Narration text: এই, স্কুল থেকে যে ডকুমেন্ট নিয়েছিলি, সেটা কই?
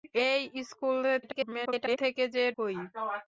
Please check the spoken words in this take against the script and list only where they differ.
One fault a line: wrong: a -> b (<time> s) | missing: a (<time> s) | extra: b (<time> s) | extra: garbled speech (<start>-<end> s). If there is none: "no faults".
extra: garbled speech (1.2-2.0 s)
missing: ডকুমেন্ট নিয়েছিলি সেটা (2.4 s)